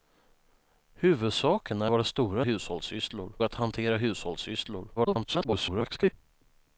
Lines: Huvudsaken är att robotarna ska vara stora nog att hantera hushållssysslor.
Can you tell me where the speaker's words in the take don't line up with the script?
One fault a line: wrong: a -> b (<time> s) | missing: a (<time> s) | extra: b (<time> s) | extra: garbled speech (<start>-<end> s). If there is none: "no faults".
missing: att robotarna ska (1.9 s)
wrong: nog -> hushållssysslor (2.4 s)
extra: garbled speech (5.0-6.1 s)